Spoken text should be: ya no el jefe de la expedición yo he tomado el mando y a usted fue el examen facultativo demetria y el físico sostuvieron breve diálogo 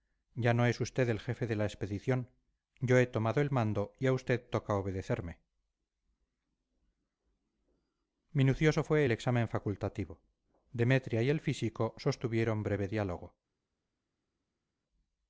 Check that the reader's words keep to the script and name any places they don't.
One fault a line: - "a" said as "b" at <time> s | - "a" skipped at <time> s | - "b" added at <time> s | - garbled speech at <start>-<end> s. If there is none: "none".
- "es usted" added at 0.7 s
- "toca obedecerme minucioso" added at 4.5 s